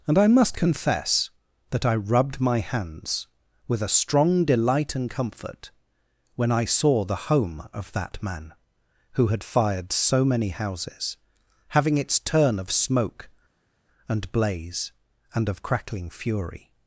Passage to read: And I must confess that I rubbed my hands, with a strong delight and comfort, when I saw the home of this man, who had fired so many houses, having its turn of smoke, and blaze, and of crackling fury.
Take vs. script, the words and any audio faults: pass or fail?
fail